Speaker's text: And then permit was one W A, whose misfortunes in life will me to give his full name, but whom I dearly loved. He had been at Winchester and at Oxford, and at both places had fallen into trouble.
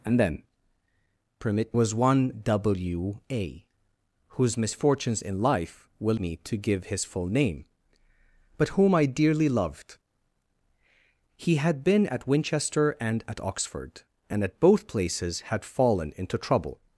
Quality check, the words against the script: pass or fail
pass